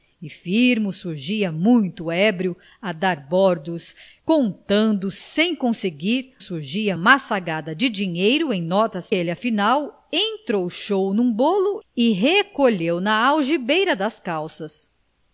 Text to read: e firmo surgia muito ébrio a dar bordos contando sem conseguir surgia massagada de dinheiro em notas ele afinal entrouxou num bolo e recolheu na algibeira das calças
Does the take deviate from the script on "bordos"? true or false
false